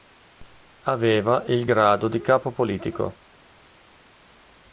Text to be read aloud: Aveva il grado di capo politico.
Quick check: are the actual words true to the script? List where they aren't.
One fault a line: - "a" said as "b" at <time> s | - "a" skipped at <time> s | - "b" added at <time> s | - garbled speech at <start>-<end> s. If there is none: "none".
none